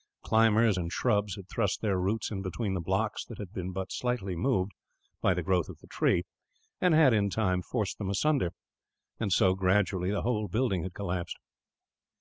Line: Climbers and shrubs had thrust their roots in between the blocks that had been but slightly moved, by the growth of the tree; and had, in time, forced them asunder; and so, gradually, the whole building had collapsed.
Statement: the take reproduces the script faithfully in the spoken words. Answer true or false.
true